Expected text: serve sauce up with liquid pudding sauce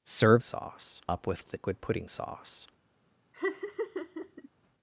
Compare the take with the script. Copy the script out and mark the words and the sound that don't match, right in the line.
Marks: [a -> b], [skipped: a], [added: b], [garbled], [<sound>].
serve sauce up with liquid pudding sauce [laugh]